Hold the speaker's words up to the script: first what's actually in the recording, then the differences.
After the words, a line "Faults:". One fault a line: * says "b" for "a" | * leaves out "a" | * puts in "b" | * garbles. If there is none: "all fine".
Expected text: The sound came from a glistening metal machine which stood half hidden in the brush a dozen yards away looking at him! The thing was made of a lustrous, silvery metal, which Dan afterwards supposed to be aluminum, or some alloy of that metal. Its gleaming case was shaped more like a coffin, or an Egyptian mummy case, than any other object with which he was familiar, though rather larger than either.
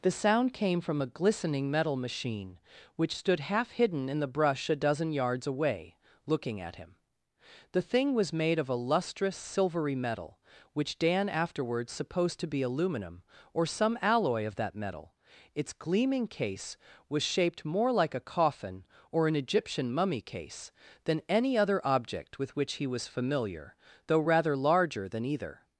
The sound came from a glistening metal machine which stood half hidden in the brush a dozen yards away looking at him! The thing was made of a lustrous, silvery metal, which Dan afterwards supposed to be aluminum, or some alloy of that metal. Its gleaming case was shaped more like a coffin, or an Egyptian mummy case, than any other object with which he was familiar, though rather larger than either.
Faults:
all fine